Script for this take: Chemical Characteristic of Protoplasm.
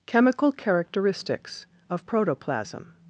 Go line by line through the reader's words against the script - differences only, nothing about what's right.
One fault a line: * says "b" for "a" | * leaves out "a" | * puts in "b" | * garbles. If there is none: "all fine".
* says "Characteristics" for "Characteristic"